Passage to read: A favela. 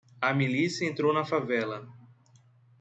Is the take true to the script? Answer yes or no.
no